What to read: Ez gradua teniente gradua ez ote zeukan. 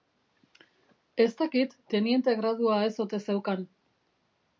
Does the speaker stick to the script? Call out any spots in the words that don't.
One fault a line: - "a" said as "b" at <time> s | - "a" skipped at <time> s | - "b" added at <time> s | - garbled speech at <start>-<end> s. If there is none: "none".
- "gradua" said as "dakit" at 1.4 s